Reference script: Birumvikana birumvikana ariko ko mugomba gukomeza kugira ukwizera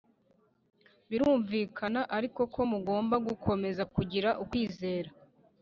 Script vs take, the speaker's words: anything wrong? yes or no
yes